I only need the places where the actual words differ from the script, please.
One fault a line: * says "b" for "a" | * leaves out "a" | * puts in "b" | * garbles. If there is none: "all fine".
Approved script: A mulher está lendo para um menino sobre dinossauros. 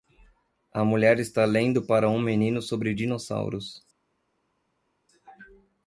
all fine